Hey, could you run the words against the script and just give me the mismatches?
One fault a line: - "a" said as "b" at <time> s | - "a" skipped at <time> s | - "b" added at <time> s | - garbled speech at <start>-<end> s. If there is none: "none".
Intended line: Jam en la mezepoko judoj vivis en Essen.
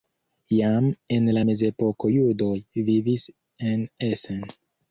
none